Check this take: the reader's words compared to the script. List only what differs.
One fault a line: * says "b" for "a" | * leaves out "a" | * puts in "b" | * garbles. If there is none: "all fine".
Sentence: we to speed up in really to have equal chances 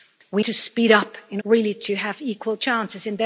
all fine